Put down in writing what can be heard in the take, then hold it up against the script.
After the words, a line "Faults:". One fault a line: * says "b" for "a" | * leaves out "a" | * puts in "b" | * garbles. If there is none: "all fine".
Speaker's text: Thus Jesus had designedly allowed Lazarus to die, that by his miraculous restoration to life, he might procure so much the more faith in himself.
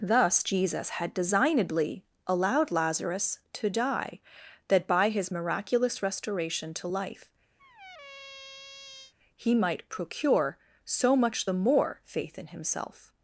Thus Jesus had designedly allowed Lazarus to die, that by his miraculous restoration to life, he might procure so much the more faith in himself.
Faults:
all fine